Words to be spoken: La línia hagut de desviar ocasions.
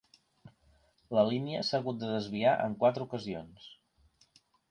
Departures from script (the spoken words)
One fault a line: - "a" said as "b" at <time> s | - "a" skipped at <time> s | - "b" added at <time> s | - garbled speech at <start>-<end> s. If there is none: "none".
- "s'ha" added at 1.7 s
- "en quatre" added at 2.7 s